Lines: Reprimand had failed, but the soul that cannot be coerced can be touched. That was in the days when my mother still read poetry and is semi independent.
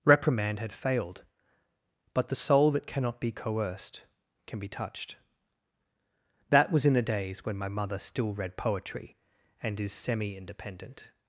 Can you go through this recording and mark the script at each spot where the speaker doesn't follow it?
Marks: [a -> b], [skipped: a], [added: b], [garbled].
Reprimand had failed, but the soul that cannot be coerced can be touched. That was in the days when my mother still read poetry and is semi independent.